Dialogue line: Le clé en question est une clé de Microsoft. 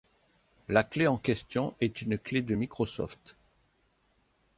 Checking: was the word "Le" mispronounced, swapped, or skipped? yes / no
yes